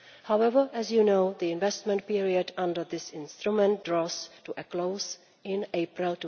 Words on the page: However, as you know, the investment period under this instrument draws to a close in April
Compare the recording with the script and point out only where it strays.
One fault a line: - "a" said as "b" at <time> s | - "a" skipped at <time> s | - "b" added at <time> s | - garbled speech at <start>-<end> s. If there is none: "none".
none